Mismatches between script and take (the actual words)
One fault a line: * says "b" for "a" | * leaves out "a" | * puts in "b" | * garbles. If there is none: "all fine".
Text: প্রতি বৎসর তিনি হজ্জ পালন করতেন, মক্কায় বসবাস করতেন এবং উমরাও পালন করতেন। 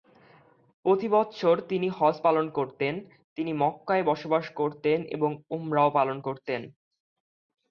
* puts in "তিনি"